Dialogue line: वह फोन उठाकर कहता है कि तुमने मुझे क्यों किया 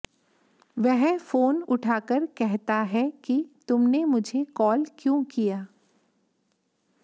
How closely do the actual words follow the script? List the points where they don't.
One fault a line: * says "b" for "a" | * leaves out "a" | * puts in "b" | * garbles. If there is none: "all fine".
* puts in "कॉल"